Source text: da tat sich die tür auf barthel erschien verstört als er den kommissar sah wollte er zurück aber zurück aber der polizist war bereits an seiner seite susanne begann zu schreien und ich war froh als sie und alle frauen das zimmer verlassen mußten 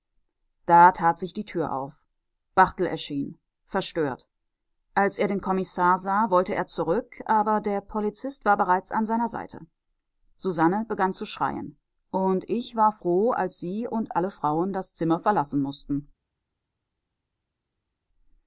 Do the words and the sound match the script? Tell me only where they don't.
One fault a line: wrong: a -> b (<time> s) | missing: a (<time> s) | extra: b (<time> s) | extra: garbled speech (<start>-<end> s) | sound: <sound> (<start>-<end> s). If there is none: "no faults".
missing: zurück aber (7.6 s)